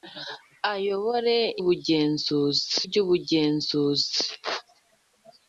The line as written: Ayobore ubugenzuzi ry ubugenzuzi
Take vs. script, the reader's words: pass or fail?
pass